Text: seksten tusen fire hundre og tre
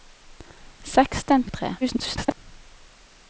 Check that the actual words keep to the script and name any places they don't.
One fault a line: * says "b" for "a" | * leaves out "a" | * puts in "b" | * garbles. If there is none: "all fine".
* leaves out "tusen fire hundre"
* garbles